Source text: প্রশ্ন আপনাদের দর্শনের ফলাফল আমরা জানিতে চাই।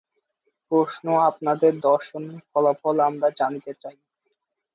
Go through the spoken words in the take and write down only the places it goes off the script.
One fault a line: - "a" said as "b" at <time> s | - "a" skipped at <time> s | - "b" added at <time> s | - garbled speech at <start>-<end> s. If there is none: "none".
none